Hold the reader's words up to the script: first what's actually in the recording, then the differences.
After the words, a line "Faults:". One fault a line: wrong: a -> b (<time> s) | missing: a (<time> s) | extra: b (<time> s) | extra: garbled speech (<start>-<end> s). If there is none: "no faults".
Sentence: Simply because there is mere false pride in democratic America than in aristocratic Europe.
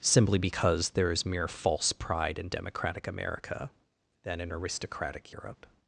Simply because there is mere false pride in democratic America than in aristocratic Europe.
Faults:
no faults